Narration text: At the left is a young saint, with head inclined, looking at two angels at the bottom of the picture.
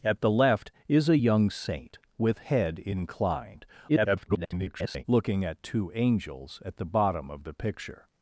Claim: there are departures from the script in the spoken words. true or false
true